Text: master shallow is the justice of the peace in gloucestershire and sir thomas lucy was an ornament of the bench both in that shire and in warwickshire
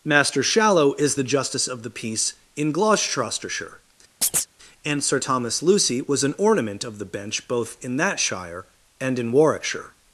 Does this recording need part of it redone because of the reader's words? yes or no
no